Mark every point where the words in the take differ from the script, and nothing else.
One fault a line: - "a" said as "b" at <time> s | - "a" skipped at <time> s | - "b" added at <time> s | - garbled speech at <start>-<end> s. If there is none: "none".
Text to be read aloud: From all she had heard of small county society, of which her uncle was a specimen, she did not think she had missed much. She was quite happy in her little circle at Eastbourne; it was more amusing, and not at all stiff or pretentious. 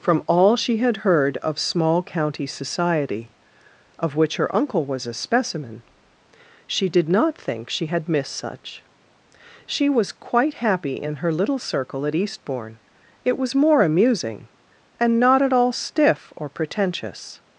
- "much" said as "such" at 8.3 s